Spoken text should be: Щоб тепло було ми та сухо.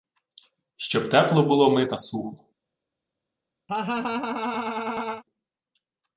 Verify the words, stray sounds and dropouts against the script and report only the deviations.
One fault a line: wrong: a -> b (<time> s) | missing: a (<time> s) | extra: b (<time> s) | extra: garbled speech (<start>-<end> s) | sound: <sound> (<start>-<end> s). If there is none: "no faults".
sound: laugh (3.7-5.2 s)